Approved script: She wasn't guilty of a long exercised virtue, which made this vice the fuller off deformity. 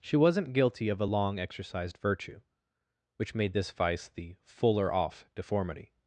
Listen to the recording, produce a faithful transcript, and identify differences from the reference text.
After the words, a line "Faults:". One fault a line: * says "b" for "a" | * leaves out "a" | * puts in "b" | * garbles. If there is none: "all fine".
She wasn't guilty of a long exercised virtue, which made this vice the fuller off deformity.
Faults:
all fine